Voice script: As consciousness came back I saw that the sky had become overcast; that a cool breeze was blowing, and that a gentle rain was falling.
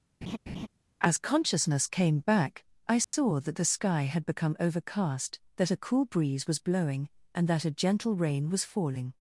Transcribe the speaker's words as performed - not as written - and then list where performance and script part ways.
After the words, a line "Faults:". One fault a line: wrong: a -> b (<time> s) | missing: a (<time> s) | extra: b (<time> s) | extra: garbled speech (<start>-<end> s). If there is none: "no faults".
As consciousness came back I saw that the sky had become overcast; that a cool breeze was blowing, and that a gentle rain was falling.
Faults:
no faults